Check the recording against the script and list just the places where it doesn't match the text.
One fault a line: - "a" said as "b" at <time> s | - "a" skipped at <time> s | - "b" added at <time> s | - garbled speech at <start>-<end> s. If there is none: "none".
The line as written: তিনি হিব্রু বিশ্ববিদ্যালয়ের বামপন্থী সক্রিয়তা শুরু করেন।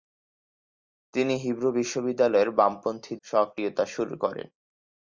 none